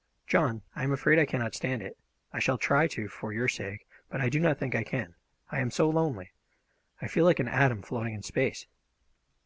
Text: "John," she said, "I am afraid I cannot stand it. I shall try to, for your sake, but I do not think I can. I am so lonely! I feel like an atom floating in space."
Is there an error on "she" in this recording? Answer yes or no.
yes